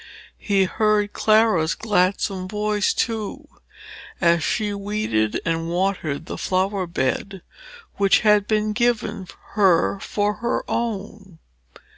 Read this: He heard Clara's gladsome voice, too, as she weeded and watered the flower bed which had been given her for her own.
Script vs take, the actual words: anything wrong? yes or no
no